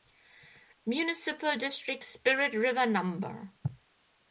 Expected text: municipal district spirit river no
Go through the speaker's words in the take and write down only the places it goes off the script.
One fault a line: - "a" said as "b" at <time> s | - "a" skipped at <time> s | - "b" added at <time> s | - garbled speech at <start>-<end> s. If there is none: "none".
none